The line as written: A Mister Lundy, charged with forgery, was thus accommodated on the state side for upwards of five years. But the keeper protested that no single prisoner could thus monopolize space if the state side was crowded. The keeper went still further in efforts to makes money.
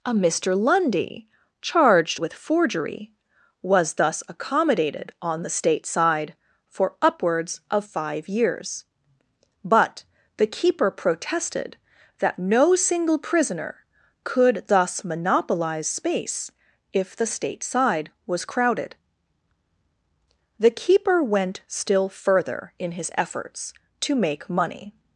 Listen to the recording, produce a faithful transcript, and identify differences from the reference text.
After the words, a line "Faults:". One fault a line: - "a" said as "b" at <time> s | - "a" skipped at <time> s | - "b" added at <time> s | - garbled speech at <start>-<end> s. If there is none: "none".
A Mister Lundy, charged with forgery, was thus accommodated on the state side for upwards of five years. But the keeper protested that no single prisoner could thus monopolize space if the state side was crowded. The keeper went still further in his efforts to make money.
Faults:
- "his" added at 22.9 s
- "makes" said as "make" at 24.1 s